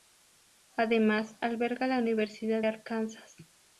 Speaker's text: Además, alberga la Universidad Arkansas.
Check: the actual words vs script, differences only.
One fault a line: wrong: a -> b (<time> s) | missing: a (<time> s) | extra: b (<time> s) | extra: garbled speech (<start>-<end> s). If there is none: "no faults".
no faults